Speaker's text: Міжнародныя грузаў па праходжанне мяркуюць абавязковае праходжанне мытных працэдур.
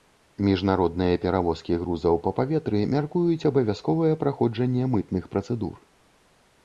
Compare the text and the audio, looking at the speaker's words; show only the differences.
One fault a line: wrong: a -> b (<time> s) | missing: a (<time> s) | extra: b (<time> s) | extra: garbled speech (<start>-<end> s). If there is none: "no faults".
extra: перавозкі (1.2 s)
wrong: праходжанне -> паветры (2.4 s)